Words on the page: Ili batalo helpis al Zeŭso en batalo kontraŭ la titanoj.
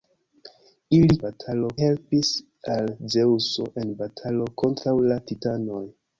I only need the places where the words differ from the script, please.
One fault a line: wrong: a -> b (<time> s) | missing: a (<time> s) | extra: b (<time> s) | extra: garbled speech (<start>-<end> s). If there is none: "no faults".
no faults